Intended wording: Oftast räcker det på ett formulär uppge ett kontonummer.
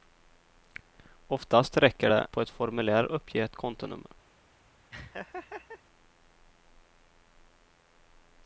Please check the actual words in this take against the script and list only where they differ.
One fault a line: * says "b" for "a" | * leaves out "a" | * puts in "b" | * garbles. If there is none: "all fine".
all fine